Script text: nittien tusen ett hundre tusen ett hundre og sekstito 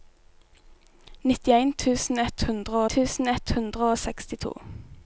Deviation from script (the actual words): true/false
false